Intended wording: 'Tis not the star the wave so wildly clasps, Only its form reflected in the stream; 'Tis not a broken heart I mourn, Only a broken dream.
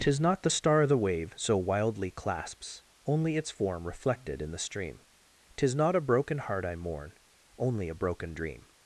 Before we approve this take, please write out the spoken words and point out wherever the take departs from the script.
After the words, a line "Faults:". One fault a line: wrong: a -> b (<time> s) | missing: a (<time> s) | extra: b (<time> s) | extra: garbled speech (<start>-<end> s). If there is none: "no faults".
'Tis not the star the wave so wildly clasps, Only its form reflected in the stream; 'Tis not a broken heart I mourn, Only a broken dream.
Faults:
no faults